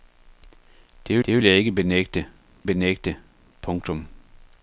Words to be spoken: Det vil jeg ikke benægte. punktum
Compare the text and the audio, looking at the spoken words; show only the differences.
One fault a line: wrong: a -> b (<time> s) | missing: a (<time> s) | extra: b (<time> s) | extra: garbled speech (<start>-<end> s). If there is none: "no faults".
extra: det (1.3 s)
extra: benægte (2.6 s)